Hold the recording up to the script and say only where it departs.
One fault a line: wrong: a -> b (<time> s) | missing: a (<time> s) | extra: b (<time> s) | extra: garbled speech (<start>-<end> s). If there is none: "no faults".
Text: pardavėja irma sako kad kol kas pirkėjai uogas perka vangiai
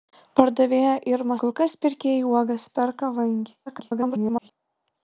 missing: sako kad (1.4 s)
extra: garbled speech (3.7-4.5 s)